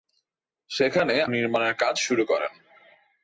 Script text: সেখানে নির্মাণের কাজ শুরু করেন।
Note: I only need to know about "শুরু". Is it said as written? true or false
true